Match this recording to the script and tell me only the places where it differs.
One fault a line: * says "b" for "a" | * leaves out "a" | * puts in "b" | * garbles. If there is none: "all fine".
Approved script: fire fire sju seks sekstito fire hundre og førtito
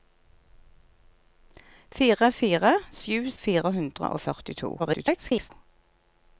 * leaves out "seks sekstito"
* garbles